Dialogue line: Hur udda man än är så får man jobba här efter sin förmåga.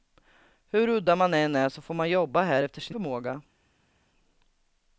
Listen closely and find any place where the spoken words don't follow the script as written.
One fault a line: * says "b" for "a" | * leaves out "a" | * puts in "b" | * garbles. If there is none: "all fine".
all fine